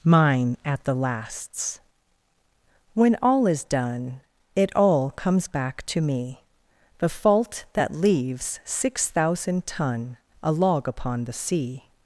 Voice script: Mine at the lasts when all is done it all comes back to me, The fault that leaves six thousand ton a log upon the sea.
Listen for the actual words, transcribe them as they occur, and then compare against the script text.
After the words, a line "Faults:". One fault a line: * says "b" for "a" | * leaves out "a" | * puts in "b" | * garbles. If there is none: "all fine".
Mine at the lasts when all is done it all comes back to me, The fault that leaves six thousand ton a log upon the sea.
Faults:
all fine